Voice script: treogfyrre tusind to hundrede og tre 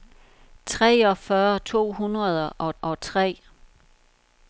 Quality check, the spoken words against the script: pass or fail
fail